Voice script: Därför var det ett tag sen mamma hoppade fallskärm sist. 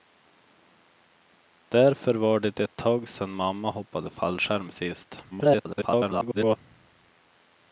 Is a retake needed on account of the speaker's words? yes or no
yes